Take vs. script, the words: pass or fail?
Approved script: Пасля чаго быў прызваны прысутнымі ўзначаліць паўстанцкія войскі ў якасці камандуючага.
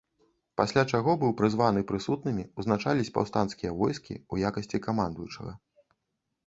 pass